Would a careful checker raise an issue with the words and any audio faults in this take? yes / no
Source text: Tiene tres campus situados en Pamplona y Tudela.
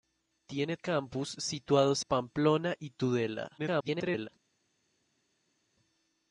yes